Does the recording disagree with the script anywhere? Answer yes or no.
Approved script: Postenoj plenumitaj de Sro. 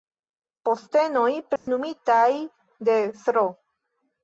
no